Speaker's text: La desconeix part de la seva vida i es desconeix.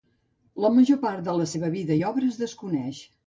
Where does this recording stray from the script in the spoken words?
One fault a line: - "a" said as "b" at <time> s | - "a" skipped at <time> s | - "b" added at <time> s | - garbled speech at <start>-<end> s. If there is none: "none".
- "desconeix" said as "major" at 0.8 s
- "obra" added at 2.1 s